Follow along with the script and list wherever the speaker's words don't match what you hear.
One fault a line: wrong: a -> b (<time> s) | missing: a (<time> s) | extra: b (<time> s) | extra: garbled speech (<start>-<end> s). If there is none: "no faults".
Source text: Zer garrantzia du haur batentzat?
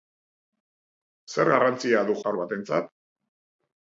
no faults